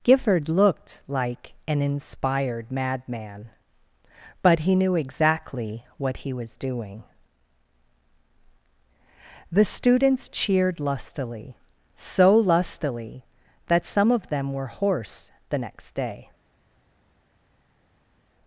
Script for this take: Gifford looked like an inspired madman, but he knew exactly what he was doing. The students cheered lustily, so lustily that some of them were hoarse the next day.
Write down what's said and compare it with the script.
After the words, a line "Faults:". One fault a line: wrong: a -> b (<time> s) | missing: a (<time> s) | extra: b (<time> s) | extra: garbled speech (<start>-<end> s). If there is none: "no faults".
Gifford looked like an inspired madman, but he knew exactly what he was doing. The students cheered lustily, so lustily that some of them were hoarse the next day.
Faults:
no faults